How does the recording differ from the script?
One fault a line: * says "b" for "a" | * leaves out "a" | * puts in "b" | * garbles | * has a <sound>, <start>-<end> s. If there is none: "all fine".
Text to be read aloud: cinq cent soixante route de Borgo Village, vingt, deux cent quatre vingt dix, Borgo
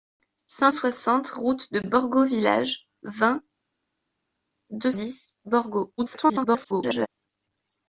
* leaves out "cent"
* leaves out "cent quatre vingt"
* garbles